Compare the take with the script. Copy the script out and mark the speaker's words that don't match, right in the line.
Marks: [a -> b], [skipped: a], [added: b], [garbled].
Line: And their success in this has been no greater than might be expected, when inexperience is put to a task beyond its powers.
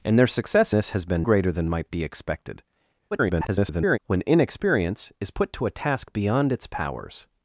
And their success [skipped: in] this has been [skipped: no] greater than might be expected, [garbled] when inexperience is put to a task beyond its powers.